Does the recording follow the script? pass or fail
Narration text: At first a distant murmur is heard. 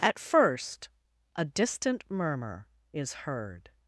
pass